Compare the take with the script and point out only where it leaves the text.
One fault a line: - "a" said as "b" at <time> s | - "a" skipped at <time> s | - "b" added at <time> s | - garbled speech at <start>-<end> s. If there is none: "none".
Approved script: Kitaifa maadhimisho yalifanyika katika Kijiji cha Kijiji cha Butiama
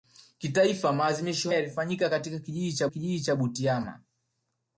none